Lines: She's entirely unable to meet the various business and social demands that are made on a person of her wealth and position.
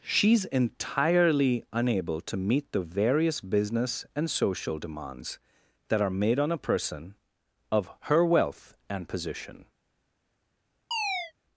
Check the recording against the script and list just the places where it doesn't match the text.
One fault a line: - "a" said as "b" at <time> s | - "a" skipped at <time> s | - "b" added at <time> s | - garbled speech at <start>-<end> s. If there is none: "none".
none